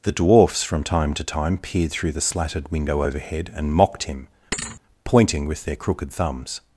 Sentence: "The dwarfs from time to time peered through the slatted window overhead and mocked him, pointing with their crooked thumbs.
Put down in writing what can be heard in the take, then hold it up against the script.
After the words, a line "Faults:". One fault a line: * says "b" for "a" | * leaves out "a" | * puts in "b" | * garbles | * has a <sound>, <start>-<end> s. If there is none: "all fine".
"The dwarfs from time to time peered through the slatted window overhead and mocked him, pointing with their crooked thumbs.
Faults:
* has a thud, 4.5-4.8 s